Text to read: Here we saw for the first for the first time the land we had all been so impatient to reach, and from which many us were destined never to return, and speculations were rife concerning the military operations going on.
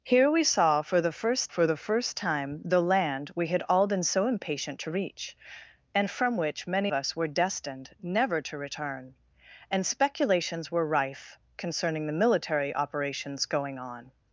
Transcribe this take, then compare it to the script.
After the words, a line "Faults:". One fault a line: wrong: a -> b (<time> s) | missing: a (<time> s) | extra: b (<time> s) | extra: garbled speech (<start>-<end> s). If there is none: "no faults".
Here we saw for the first for the first time the land we had all been so impatient to reach, and from which many us were destined never to return, and speculations were rife concerning the military operations going on.
Faults:
no faults